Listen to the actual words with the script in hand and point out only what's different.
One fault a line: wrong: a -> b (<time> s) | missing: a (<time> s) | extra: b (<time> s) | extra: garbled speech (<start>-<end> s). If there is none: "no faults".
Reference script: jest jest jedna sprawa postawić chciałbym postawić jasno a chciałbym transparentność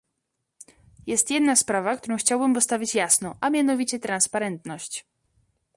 missing: jest (1.3 s)
wrong: postawić -> którą (2.0 s)
wrong: chciałbym -> mianowicie (3.5 s)